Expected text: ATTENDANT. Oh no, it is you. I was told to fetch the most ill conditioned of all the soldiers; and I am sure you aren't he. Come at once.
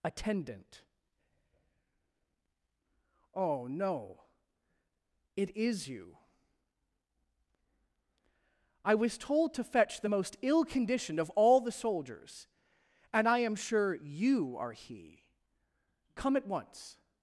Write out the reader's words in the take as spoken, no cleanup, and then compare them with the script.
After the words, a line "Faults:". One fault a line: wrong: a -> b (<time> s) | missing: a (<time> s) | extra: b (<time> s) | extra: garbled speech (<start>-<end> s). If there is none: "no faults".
ATTENDANT. Oh no, it is you. I was told to fetch the most ill conditioned of all the soldiers; and I am sure you are he. Come at once.
Faults:
wrong: aren't -> are (14.6 s)